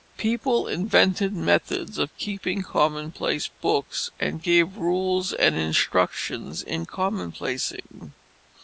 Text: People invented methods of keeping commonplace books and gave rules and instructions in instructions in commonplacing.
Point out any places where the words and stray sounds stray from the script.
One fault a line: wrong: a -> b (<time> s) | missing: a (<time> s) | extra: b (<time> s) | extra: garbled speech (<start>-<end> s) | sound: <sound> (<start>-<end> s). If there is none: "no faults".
missing: instructions in (6.9 s)